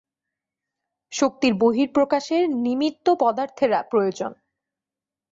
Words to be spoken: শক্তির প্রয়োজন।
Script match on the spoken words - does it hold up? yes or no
no